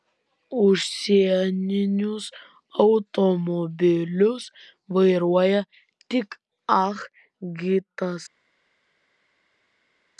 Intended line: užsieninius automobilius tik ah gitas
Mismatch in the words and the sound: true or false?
true